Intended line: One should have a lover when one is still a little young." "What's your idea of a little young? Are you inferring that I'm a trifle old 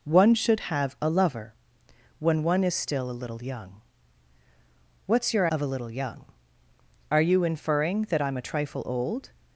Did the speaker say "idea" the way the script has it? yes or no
no